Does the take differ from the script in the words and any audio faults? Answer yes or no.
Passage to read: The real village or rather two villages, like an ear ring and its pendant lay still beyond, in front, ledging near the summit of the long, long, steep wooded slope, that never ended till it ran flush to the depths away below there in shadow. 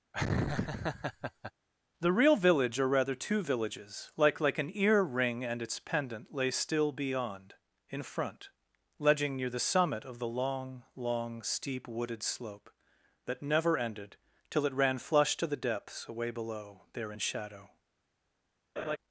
yes